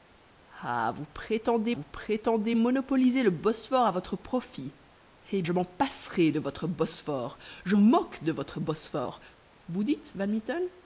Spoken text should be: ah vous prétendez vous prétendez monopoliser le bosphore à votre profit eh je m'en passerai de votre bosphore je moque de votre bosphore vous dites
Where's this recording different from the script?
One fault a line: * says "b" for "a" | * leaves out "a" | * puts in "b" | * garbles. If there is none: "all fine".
all fine